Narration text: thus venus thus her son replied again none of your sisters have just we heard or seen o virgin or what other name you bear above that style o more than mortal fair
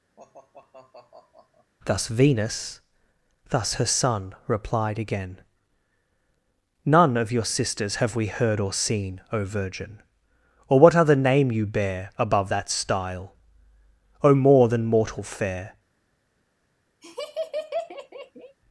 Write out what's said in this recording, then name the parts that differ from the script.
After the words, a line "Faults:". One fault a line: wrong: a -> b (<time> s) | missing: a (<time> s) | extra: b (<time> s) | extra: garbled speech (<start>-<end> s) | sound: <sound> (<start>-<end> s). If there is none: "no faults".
thus venus thus her son replied again none of your sisters have we heard or seen o virgin or what other name you bear above that style o more than mortal fair
Faults:
sound: sigh (0.2-1.7 s)
missing: just (8.1 s)
sound: laugh (17.0-18.6 s)